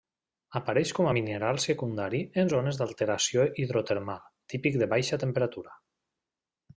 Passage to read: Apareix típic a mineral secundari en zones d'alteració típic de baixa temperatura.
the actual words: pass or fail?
fail